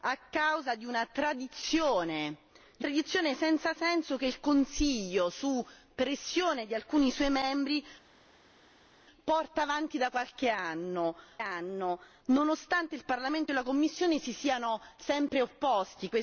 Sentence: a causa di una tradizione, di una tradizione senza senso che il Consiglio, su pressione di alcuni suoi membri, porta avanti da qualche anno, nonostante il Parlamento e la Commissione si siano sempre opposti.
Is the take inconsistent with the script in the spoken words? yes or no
yes